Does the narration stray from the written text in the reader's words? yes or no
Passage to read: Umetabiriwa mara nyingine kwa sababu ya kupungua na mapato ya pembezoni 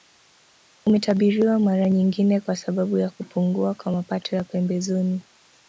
yes